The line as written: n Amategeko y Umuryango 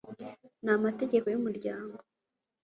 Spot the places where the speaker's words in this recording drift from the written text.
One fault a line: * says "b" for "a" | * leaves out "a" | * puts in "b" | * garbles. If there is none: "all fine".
all fine